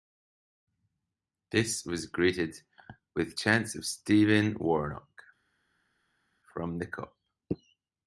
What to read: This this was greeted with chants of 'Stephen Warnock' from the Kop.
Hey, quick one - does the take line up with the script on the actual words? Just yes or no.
no